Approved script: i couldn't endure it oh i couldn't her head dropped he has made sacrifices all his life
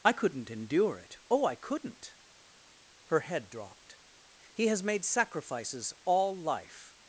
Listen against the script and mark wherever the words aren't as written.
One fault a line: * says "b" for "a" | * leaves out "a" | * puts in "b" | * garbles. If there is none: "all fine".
* leaves out "his"